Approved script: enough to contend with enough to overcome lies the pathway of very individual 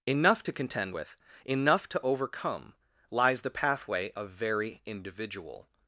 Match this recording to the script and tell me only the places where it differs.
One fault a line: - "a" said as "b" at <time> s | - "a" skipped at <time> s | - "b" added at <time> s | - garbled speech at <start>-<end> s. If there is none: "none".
none